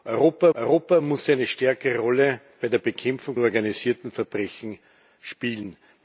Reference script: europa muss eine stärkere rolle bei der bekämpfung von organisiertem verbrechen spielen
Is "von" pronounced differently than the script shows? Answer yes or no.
yes